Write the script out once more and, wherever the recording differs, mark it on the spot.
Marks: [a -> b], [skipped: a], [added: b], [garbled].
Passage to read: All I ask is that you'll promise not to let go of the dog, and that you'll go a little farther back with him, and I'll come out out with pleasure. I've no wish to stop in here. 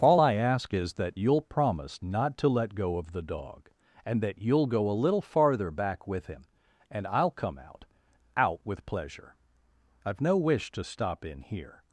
All I ask is that you'll promise not to let go of the dog, and that you'll go a little farther back with him, and I'll come out out with pleasure. I've no wish to stop in here.